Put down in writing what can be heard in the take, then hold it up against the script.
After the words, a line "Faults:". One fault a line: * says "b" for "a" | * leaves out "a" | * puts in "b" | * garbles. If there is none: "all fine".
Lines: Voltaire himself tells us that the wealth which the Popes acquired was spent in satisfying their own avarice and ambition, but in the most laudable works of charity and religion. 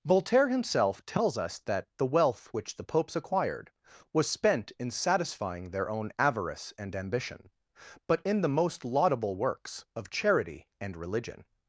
Voltaire himself tells us that the wealth which the Popes acquired was spent in satisfying their own avarice and ambition, but in the most laudable works of charity and religion.
Faults:
all fine